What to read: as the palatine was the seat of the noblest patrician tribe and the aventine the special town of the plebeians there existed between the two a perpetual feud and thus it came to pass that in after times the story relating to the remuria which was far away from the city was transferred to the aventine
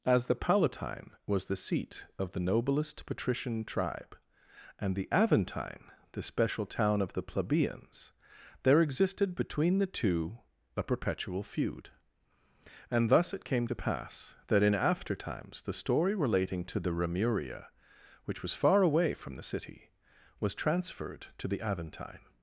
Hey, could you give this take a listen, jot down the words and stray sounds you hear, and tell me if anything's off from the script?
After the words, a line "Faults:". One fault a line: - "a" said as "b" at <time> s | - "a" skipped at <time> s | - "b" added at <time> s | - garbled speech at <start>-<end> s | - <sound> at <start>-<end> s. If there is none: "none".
as the palatine was the seat of the noblest patrician tribe and the aventine the special town of the plebeians there existed between the two a perpetual feud and thus it came to pass that in after times the story relating to the remuria which was far away from the city was transferred to the aventine
Faults:
none